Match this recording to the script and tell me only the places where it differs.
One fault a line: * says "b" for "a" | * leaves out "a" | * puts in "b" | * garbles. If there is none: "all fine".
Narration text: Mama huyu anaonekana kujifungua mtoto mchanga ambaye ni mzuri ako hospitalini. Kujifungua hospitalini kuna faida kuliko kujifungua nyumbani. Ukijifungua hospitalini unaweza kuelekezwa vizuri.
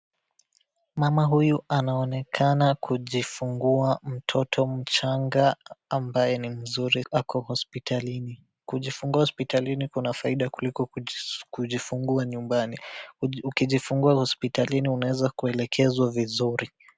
all fine